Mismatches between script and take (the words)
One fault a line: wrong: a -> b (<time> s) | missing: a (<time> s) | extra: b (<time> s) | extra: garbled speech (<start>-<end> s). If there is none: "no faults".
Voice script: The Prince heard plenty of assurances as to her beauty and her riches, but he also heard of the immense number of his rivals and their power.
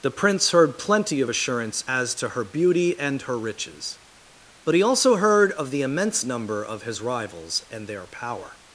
wrong: assurances -> assurance (1.3 s)